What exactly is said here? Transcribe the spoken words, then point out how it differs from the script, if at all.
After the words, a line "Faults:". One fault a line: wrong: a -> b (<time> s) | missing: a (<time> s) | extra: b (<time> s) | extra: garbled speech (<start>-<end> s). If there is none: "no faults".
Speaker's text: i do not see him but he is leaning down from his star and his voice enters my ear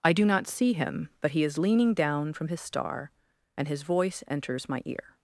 i do not see him but he is leaning down from his star and his voice enters my ear
Faults:
no faults